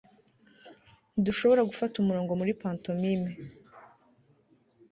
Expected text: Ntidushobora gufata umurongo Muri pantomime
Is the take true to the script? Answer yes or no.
yes